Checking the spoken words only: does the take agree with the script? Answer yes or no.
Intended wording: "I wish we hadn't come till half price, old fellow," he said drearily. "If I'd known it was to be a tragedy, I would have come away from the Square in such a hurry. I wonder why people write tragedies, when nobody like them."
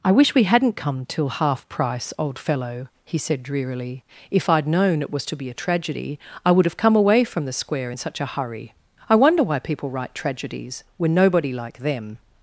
yes